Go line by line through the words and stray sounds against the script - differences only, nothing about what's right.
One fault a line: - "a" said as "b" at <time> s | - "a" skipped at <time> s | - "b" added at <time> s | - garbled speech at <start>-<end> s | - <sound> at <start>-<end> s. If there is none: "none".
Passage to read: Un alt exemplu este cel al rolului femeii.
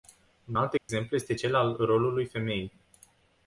- dropout at 0.8-0.9 s